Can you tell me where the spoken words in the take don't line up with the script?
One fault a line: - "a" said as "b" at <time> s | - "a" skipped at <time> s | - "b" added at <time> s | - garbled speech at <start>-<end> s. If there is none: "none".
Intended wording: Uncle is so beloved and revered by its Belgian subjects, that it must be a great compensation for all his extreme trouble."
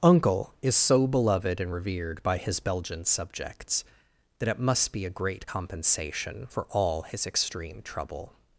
- "its" said as "his" at 2.4 s